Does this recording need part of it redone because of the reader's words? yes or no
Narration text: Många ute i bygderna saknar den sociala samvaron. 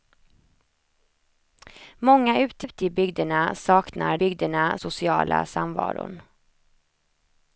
yes